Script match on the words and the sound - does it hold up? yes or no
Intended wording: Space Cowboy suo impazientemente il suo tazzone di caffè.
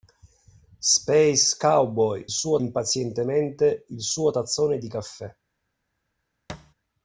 no